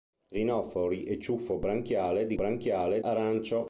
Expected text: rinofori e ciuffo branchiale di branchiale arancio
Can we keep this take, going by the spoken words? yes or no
yes